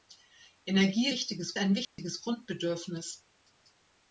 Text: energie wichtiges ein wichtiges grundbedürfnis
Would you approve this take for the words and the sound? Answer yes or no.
no